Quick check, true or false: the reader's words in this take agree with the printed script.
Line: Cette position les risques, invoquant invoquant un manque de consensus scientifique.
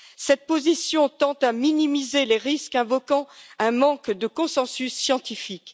false